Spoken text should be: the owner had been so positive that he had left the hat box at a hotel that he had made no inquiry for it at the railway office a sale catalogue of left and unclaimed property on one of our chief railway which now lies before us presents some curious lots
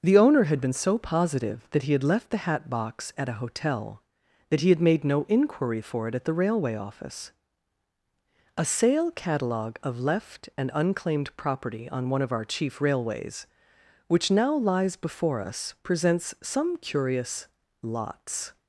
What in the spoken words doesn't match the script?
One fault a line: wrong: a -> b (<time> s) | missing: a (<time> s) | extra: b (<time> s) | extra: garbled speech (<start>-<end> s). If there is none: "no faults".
wrong: railway -> railways (12.8 s)